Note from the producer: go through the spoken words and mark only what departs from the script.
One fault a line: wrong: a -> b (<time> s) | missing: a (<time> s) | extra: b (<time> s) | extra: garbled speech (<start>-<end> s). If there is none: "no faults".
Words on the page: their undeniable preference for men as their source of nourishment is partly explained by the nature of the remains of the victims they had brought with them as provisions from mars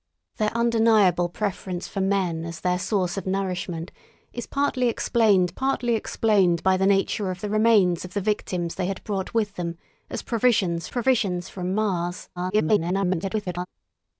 extra: partly explained (5.5 s)
extra: provisions (10.9 s)
extra: garbled speech (12.4-13.7 s)